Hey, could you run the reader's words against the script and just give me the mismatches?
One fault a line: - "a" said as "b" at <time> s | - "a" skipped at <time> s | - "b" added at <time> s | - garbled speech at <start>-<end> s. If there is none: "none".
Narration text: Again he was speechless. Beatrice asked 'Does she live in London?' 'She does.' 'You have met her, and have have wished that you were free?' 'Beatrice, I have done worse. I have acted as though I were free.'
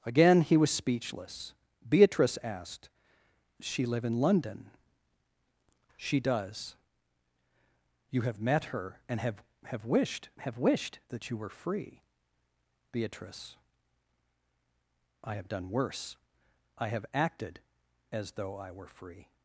- "Does" skipped at 2.9 s
- "have wished" added at 10.4 s